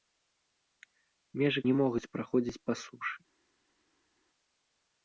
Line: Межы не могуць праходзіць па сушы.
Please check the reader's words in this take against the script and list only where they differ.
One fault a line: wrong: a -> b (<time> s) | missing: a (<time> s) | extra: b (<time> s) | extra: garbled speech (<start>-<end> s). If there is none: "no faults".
no faults